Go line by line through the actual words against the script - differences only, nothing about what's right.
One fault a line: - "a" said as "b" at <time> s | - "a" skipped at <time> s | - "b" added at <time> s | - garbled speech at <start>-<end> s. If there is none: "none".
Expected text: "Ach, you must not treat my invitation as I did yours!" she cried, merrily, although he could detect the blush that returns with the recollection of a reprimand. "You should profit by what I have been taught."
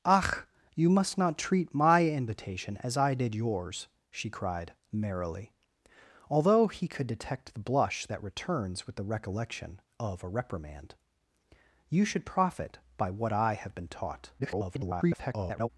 - garbled speech at 14.4-15.7 s